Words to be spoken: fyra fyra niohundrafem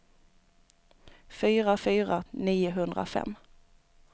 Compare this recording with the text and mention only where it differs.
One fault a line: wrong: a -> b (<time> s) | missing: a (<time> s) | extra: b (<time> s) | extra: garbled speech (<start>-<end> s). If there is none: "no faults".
no faults